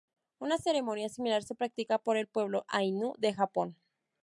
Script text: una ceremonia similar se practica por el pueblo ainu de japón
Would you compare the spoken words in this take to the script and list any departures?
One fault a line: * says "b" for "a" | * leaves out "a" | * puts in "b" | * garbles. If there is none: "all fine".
all fine